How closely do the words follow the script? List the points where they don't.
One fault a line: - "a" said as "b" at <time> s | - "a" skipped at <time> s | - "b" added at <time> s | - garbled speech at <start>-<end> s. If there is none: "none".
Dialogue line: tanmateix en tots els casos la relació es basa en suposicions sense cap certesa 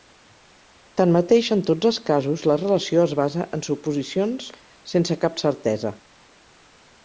none